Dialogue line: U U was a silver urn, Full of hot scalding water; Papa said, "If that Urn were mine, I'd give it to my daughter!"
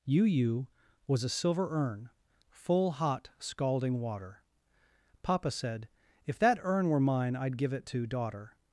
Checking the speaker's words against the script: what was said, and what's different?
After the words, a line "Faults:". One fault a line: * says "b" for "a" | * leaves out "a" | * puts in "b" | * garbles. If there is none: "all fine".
U U was a silver urn, Full hot scalding water; Papa said, "If that Urn were mine, I'd give it to daughter!"
Faults:
* leaves out "of"
* leaves out "my"